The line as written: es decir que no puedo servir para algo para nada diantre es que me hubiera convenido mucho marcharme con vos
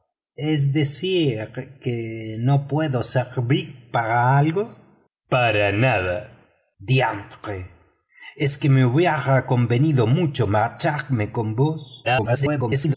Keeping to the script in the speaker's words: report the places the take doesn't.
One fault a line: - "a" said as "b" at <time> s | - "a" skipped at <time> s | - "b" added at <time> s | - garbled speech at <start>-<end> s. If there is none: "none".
- garbled speech at 12.0-12.9 s